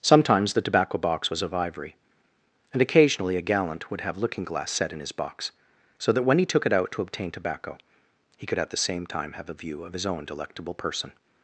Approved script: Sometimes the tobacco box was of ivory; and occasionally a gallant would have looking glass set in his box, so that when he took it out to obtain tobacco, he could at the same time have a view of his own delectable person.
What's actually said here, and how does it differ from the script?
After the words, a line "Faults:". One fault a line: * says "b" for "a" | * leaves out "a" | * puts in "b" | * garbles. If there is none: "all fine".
Sometimes the tobacco box was of ivory; and occasionally a gallant would have looking glass set in his box, so that when he took it out to obtain tobacco, he could at the same time have a view of his own delectable person.
Faults:
all fine